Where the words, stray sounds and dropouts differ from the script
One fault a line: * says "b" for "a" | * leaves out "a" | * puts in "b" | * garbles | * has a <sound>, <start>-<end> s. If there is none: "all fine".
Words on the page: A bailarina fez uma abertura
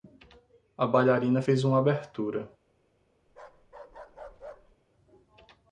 * has a bark, 3.3-4.8 s